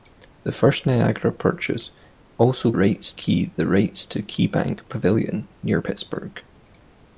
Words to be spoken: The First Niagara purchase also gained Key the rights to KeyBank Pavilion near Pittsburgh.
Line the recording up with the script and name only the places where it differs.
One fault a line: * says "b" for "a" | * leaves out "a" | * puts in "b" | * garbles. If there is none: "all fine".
* says "rights" for "gained"